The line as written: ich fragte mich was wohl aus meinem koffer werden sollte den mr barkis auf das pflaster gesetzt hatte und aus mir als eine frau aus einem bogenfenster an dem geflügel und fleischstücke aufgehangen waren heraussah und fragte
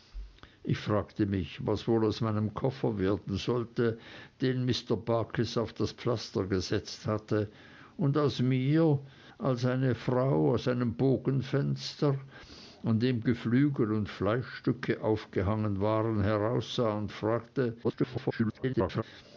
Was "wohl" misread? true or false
false